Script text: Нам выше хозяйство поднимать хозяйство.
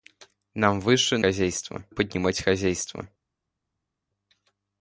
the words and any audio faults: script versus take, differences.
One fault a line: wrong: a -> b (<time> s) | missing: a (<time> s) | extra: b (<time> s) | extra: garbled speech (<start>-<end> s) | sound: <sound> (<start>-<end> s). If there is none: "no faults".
no faults